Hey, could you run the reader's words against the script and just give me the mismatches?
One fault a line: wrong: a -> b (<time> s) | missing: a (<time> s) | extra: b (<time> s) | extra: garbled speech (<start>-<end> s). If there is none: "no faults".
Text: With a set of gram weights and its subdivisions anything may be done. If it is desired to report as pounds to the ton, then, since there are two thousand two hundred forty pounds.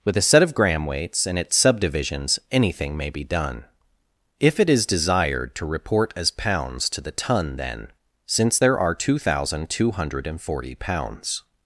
no faults